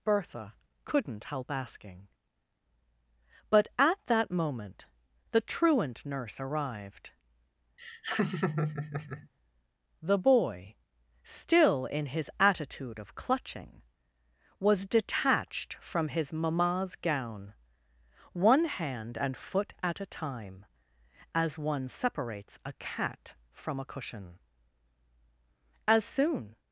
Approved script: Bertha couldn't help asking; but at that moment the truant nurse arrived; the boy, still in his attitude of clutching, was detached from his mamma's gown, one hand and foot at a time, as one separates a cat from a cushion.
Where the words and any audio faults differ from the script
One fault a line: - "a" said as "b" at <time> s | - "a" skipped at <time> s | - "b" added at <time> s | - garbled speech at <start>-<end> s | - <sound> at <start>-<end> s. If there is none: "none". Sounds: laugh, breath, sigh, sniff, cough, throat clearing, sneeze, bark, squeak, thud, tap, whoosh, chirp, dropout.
- laugh at 7.8-9.3 s
- "As soon" added at 25.9 s